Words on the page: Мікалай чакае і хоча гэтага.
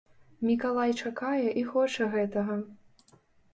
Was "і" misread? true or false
false